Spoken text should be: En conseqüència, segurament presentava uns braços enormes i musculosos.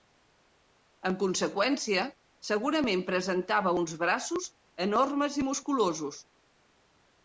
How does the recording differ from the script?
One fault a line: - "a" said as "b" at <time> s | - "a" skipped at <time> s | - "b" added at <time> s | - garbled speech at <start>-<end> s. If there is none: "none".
none